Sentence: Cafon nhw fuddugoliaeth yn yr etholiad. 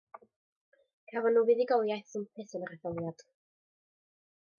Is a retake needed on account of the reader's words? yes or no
yes